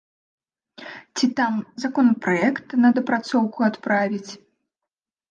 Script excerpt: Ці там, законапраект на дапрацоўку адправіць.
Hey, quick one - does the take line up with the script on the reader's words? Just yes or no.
yes